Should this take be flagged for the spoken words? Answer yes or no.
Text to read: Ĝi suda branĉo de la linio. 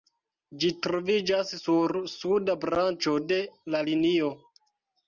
yes